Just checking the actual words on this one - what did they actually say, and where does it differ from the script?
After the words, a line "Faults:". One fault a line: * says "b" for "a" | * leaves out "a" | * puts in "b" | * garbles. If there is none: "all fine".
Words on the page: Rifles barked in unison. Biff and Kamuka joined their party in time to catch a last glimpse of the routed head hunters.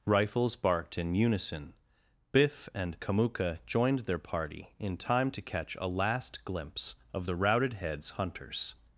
Rifles barked in unison. Biff and Kamuka joined their party in time to catch a last glimpse of the routed heads hunters.
Faults:
* says "heads" for "head"